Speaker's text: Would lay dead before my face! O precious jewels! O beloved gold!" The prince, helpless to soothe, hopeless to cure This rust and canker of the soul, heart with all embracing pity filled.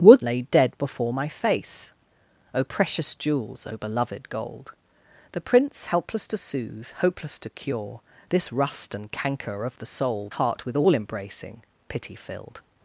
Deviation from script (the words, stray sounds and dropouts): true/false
false